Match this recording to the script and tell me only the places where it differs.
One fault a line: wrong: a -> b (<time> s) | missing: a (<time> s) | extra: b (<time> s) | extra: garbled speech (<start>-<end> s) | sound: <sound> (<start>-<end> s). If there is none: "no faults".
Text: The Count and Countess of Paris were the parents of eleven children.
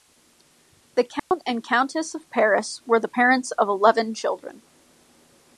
sound: dropout (1.2-1.3 s)